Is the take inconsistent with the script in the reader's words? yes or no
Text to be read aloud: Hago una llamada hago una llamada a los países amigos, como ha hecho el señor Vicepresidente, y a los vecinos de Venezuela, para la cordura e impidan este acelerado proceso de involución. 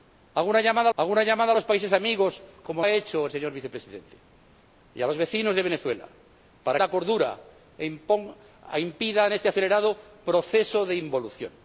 no